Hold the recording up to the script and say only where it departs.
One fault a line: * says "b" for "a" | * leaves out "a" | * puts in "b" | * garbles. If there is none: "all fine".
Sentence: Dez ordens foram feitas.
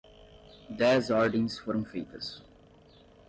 all fine